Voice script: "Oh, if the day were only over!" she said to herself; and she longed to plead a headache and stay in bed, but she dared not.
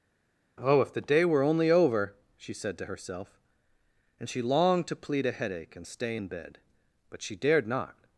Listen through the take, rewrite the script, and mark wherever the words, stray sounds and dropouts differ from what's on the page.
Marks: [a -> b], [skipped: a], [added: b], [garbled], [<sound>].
"Oh, if the day were only over!" she said to herself; and she longed to plead a headache and stay in bed, but she dared not.